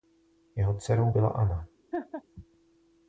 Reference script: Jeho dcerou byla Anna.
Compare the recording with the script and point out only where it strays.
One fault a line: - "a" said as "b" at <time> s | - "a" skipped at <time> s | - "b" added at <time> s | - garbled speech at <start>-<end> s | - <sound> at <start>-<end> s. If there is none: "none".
- laugh at 1.9-2.2 s